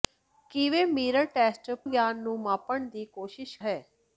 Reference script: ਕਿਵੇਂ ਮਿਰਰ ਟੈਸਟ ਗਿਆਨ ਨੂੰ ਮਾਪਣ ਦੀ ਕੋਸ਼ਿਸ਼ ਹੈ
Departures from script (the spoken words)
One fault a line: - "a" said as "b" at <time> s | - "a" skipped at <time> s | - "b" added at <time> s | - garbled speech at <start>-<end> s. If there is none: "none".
none